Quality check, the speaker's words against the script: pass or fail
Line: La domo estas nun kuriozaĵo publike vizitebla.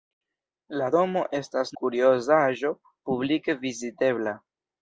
fail